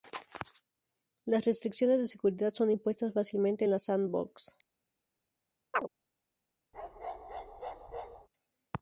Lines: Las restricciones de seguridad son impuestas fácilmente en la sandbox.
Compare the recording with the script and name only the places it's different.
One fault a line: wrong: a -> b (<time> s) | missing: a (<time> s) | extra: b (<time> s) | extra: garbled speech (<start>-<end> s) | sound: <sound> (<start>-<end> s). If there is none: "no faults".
sound: chirp (5.7-5.9 s)
sound: bark (6.7-8.3 s)